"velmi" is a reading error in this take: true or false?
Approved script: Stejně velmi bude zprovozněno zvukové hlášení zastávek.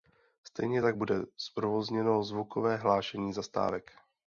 true